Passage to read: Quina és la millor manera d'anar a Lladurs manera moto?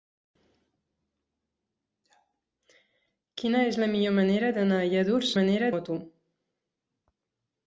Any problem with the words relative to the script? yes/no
no